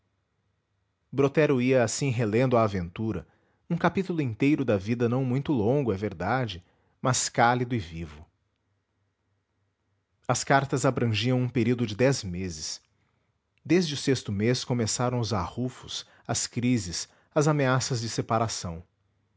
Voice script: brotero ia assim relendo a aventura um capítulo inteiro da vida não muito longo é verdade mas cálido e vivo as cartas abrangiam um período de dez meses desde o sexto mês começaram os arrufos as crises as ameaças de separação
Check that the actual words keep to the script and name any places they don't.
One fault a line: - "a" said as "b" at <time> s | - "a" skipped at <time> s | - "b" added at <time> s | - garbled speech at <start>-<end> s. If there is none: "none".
none